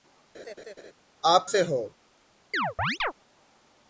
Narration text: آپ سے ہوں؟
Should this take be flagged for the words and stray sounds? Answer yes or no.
yes